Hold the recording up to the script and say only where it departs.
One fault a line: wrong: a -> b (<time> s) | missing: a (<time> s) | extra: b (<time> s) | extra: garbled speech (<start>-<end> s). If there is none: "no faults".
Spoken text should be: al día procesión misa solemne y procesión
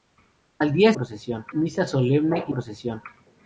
no faults